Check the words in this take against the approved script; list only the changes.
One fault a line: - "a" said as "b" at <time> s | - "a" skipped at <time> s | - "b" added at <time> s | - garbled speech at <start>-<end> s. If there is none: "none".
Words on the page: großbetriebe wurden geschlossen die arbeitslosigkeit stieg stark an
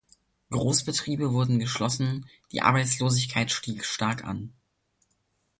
none